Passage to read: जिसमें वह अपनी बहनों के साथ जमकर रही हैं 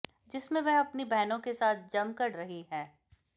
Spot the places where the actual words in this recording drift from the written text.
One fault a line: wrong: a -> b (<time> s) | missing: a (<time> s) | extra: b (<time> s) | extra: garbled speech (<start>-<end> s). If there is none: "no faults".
no faults